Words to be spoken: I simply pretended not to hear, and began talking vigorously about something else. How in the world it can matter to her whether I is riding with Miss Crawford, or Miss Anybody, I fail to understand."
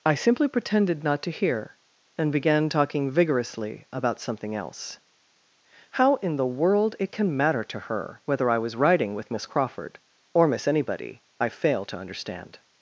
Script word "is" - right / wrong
wrong